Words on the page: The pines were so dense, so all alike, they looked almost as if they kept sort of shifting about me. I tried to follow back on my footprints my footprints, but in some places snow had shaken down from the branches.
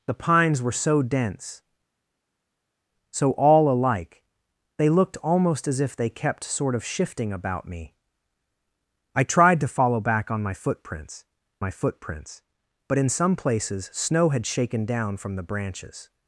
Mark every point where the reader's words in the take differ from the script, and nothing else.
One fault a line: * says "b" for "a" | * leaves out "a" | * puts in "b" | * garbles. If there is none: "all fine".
all fine